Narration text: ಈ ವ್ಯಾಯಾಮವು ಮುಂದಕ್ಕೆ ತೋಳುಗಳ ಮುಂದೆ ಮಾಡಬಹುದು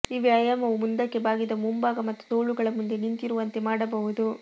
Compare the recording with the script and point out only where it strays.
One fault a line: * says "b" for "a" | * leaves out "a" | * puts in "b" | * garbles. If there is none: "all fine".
* puts in "ಬಾಗಿದ ಮುಂಭಾಗ ಮತ್ತು"
* puts in "ನಿಂತಿರುವಂತೆ"